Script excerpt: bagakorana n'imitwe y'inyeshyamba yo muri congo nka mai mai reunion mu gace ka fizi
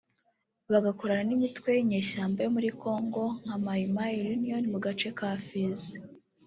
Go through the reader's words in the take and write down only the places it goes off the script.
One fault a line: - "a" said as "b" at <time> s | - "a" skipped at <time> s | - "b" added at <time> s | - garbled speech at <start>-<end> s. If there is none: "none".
none